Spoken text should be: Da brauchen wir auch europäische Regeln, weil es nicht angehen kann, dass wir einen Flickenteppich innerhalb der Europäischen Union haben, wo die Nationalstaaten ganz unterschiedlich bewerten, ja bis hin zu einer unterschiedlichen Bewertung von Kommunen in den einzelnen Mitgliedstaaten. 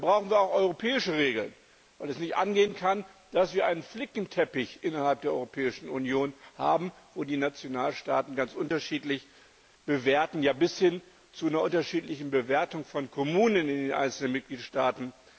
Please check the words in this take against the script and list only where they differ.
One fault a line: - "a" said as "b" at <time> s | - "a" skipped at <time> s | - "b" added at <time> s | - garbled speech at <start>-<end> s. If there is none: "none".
none